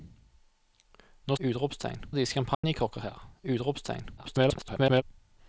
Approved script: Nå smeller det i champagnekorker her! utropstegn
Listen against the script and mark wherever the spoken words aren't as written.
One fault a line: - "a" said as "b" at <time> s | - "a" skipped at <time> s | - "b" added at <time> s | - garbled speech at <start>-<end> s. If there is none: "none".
- "smeller" said as "utropstegn" at 1.4 s
- garbled speech at 4.2-5.0 s